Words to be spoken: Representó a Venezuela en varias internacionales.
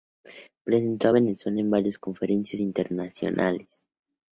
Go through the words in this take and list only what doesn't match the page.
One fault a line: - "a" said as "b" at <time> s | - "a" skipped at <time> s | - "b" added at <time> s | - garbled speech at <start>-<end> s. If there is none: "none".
- "conferencias" added at 2.0 s